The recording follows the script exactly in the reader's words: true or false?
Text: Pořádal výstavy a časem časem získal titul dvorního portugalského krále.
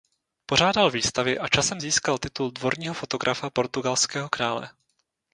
false